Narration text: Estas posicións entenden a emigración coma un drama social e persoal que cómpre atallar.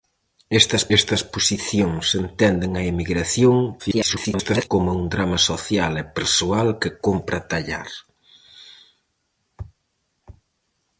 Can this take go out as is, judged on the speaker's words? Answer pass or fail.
fail